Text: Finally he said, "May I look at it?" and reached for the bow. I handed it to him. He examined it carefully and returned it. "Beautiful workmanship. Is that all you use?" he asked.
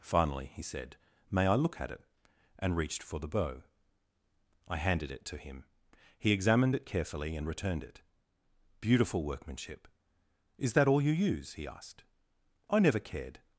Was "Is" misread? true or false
false